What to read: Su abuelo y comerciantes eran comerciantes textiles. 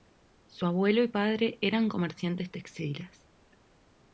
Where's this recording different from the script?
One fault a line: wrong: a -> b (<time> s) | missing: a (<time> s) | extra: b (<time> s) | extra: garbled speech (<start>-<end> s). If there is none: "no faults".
wrong: comerciantes -> padre (1.1 s)